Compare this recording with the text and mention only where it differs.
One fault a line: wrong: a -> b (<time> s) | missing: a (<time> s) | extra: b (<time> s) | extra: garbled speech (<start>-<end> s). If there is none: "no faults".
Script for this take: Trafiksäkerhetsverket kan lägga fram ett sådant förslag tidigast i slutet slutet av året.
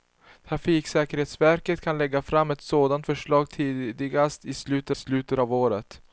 no faults